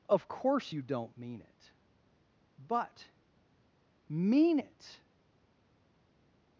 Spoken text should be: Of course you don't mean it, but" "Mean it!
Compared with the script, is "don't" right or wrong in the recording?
right